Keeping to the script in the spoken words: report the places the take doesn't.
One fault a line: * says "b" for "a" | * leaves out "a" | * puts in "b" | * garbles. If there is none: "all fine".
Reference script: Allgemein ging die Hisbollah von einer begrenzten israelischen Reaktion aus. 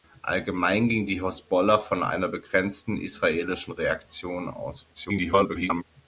* garbles